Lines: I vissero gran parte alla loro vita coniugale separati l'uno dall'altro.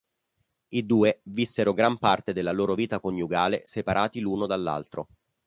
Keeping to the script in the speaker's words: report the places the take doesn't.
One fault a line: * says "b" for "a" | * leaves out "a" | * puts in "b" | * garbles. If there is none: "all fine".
* puts in "due"
* says "della" for "alla"